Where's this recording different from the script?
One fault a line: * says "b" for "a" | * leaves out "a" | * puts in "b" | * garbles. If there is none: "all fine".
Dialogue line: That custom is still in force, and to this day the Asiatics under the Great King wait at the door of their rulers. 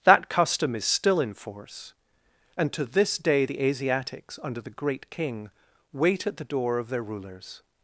all fine